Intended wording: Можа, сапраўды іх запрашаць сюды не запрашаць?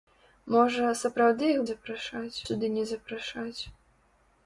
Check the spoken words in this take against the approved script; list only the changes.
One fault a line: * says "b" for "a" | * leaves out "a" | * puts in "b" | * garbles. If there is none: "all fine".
all fine